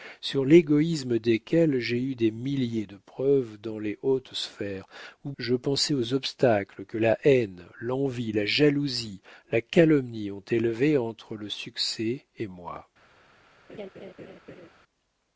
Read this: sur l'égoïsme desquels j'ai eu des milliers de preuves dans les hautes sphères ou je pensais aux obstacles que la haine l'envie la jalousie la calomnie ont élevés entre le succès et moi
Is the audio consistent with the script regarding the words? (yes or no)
yes